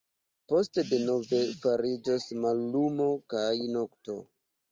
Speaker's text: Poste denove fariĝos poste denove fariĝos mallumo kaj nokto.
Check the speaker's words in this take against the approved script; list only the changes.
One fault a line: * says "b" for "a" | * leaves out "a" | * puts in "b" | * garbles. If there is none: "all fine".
* leaves out "poste denove fariĝos"